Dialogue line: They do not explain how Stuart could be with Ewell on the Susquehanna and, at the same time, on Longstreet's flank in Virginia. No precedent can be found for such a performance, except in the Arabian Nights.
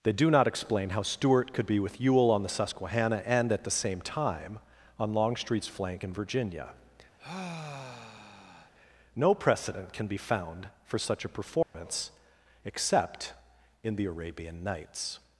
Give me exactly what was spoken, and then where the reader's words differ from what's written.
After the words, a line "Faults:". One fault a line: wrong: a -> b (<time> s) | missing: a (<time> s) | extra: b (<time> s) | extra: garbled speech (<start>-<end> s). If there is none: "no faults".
They do not explain how Stuart could be with Ewell on the Susquehanna and, at the same time, on Longstreet's flank in Virginia. No precedent can be found for such a performance, except in the Arabian Nights.
Faults:
no faults